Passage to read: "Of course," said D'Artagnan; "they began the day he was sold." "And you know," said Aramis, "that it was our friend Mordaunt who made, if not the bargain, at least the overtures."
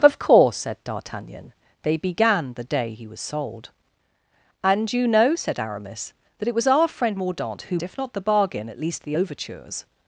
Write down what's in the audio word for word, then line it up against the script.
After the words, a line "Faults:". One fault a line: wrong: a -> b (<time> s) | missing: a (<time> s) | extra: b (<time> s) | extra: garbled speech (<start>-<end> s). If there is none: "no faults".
"Of course," said D'Artagnan; "they began the day he was sold." "And you know," said Aramis, "that it was our friend Mordaunt who if not the bargain, at least the overtures."
Faults:
missing: made (7.8 s)